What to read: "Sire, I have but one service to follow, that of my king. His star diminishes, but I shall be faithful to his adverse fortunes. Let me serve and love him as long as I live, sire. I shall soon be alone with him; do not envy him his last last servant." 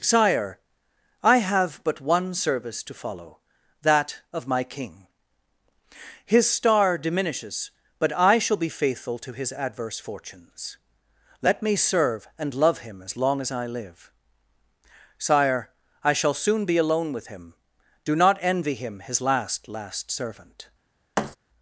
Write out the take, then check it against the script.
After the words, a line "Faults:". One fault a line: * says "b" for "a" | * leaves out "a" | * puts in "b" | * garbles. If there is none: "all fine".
"Sire, I have but one service to follow, that of my king. His star diminishes, but I shall be faithful to his adverse fortunes. Let me serve and love him as long as I live, sire. I shall soon be alone with him; do not envy him his last last servant."
Faults:
all fine